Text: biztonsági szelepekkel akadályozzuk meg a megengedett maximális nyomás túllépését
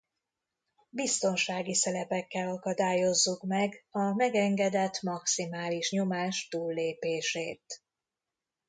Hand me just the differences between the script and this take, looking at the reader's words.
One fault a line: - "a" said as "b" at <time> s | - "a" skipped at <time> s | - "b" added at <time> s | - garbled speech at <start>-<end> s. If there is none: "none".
none